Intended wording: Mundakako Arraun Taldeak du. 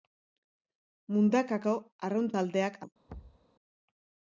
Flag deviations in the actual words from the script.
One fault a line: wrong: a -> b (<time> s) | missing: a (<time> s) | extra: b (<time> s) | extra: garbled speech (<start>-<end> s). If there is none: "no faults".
no faults